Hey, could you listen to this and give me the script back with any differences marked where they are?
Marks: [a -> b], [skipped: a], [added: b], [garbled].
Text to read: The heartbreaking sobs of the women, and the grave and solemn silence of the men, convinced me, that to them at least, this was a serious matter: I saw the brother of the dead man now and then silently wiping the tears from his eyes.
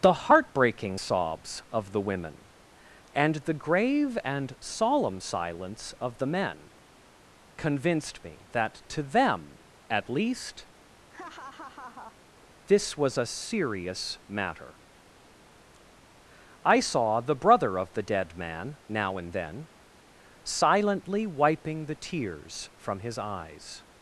The heartbreaking sobs of the women, and the grave and solemn silence of the men, convinced me, that to them at least, this was a serious matter: I saw the brother of the dead man now and then silently wiping the tears from his eyes.